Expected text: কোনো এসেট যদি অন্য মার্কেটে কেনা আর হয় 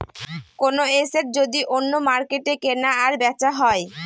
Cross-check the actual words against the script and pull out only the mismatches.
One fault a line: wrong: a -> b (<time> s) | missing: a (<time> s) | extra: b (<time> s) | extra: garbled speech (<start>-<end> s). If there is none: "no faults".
extra: বেচা (3.2 s)